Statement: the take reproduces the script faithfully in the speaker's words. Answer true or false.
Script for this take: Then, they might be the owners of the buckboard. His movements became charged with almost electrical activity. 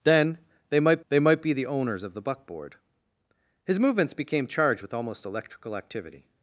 false